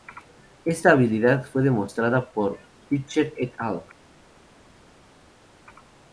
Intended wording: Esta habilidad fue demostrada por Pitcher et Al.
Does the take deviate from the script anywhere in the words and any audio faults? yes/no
no